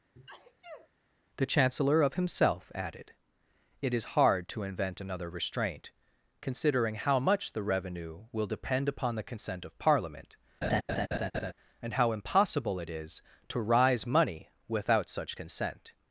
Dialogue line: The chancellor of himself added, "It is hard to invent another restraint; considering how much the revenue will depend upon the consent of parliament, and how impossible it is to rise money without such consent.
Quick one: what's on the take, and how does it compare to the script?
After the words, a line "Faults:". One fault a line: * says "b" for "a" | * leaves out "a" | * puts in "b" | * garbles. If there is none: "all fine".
The chancellor of himself added, "It is hard to invent another restraint; considering how much the revenue will depend upon the consent of parliament, and how impossible it is to rise money without such consent.
Faults:
all fine